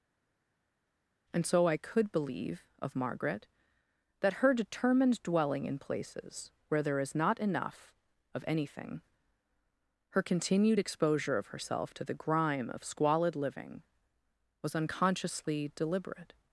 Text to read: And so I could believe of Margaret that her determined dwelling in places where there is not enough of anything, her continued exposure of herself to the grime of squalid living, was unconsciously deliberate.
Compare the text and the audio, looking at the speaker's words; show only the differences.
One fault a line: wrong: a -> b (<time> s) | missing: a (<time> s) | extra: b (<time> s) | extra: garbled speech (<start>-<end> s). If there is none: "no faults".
no faults